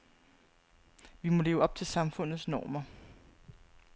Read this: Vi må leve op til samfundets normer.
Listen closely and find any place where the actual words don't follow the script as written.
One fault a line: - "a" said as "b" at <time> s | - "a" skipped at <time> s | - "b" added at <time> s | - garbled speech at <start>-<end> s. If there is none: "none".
none